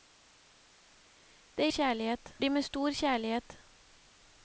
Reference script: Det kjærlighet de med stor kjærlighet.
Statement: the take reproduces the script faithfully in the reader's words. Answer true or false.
true